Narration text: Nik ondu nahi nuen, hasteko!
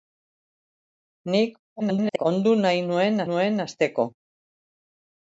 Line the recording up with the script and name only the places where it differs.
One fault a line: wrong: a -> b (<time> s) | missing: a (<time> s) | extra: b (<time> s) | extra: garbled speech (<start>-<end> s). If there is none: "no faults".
extra: garbled speech (1.8-2.3 s)
extra: nuen (3.3 s)